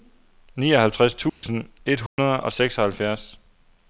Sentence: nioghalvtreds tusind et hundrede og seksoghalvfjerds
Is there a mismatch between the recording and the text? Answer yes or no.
no